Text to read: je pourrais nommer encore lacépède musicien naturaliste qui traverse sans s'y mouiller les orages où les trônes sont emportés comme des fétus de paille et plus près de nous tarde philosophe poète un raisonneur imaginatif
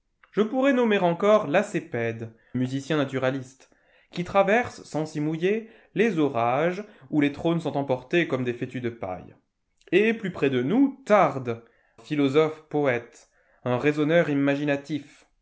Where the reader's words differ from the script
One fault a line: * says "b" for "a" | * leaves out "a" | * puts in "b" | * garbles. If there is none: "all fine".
all fine